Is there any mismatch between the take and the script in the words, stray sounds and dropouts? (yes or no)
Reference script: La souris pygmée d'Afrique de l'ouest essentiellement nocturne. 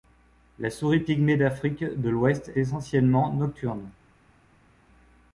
no